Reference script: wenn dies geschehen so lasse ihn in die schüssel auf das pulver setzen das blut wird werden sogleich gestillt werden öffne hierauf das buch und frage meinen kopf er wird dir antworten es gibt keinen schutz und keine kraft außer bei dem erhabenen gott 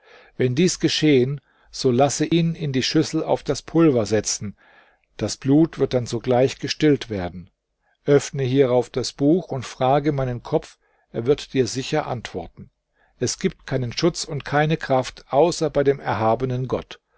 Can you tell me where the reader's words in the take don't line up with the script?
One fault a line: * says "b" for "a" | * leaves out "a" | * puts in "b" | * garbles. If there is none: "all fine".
* says "dann" for "werden"
* puts in "sicher"